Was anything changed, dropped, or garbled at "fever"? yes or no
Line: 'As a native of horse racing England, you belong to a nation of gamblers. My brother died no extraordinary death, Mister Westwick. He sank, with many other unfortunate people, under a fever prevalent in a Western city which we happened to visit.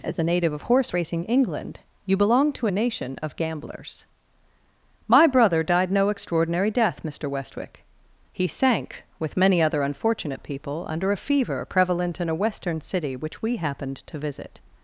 no